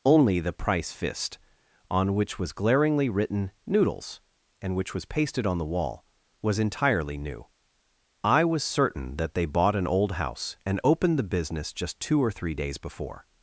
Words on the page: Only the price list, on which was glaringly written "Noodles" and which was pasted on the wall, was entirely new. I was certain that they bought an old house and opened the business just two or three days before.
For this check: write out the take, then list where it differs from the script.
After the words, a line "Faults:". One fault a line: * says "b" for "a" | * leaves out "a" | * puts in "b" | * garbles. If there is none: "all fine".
Only the price fist, on which was glaringly written "Noodles" and which was pasted on the wall, was entirely new. I was certain that they bought an old house and opened the business just two or three days before.
Faults:
* says "fist" for "list"